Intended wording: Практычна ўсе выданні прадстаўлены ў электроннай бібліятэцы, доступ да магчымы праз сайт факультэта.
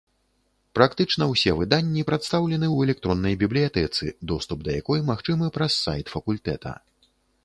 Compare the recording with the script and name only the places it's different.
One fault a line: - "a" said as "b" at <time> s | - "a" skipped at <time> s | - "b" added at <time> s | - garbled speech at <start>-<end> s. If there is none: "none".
- "якой" added at 4.8 s